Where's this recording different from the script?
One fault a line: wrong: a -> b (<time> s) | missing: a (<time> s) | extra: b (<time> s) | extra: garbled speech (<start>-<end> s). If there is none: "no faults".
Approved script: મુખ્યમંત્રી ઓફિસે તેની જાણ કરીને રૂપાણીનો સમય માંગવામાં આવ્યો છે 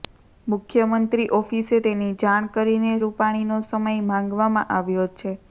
no faults